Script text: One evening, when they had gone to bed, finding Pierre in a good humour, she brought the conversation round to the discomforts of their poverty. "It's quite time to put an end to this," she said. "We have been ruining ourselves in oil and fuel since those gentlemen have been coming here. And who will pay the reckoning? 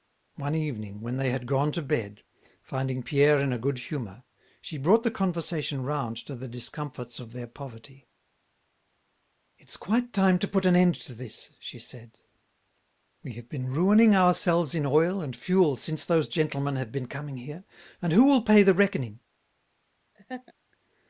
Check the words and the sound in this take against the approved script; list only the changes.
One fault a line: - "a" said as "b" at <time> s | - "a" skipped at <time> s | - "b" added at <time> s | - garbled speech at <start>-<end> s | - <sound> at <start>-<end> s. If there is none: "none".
- laugh at 20.1-20.5 s